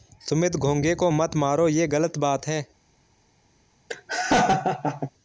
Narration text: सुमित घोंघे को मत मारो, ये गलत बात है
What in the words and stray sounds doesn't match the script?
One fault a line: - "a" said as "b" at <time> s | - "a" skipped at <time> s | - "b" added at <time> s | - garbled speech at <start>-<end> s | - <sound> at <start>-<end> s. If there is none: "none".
- laugh at 3.9-5.1 s